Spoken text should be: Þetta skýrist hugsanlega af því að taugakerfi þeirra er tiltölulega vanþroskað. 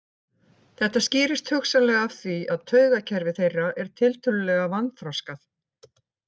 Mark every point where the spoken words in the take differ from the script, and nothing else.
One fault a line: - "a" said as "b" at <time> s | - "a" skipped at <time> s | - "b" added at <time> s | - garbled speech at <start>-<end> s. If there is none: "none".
none